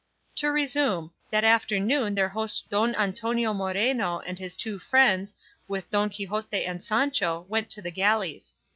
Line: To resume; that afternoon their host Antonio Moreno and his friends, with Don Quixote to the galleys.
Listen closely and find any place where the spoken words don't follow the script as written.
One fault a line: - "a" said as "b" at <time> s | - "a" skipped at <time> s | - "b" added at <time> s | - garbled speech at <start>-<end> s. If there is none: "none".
- "Don" added at 2.7 s
- "two" added at 4.5 s
- "and Sancho went" added at 6.6 s